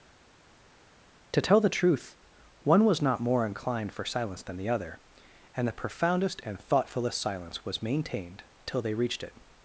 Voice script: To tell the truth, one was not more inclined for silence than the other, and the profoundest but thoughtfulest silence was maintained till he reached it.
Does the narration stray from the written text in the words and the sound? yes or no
yes